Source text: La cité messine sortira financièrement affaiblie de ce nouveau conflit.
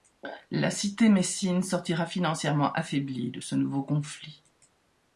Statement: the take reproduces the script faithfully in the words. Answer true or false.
true